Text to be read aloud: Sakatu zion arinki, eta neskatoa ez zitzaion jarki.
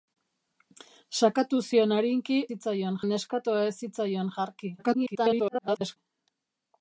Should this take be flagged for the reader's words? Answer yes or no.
yes